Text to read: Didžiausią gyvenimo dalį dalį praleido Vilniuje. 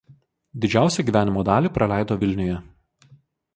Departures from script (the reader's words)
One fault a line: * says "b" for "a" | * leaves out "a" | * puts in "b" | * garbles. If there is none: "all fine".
* leaves out "dalį"